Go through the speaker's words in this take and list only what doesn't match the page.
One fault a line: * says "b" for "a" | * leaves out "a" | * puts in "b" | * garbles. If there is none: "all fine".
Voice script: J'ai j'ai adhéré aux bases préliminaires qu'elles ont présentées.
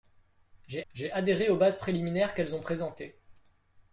all fine